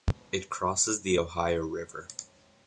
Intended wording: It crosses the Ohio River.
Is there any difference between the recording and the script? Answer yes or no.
no